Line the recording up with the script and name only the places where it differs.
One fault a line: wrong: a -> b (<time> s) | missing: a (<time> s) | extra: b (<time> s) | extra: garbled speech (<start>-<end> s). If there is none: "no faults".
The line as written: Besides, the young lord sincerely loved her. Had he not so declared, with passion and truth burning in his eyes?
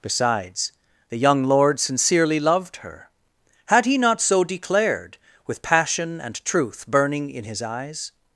no faults